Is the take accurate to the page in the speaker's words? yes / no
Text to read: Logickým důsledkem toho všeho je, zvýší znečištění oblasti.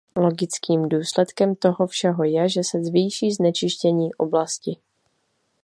no